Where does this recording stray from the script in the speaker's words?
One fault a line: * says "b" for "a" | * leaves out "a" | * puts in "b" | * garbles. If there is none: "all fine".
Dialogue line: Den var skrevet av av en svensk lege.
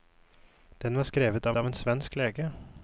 all fine